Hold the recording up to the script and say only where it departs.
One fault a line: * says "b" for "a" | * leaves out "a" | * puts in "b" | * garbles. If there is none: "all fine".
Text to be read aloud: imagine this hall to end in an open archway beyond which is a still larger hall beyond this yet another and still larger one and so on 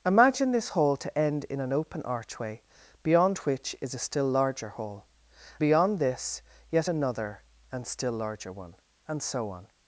all fine